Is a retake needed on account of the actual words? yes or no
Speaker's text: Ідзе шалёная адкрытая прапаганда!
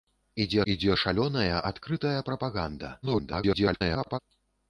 yes